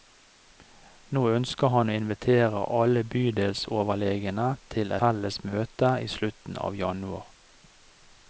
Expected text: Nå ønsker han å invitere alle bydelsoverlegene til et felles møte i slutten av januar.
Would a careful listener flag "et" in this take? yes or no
yes